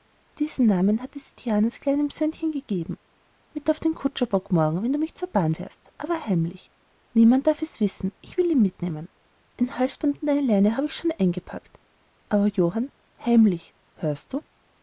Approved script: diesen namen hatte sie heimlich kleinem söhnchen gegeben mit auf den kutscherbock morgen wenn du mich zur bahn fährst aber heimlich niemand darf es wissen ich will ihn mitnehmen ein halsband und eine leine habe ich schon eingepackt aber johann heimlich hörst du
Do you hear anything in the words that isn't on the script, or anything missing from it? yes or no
yes